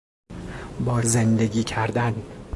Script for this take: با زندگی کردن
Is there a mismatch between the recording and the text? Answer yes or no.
no